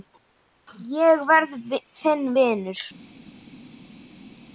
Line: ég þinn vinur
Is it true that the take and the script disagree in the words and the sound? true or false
true